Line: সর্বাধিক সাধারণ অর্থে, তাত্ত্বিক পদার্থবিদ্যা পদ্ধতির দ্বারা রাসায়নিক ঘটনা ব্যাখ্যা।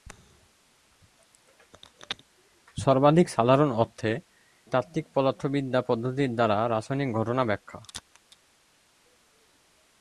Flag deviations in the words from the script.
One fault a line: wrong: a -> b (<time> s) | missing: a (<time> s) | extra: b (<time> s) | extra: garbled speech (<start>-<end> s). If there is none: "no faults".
no faults